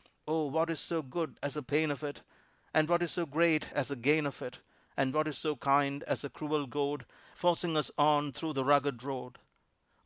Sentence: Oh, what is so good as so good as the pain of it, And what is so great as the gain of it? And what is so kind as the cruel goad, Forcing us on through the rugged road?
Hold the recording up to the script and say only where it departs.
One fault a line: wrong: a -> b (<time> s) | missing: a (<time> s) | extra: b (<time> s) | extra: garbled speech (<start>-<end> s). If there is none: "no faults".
missing: so good as (1.5 s)